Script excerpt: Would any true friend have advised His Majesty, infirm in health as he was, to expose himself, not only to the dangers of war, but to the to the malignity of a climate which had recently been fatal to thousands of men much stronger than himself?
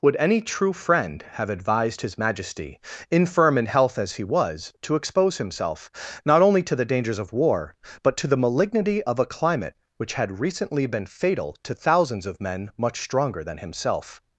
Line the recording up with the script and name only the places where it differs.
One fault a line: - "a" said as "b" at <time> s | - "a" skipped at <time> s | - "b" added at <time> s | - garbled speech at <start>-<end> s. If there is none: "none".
- "to the" skipped at 8.4 s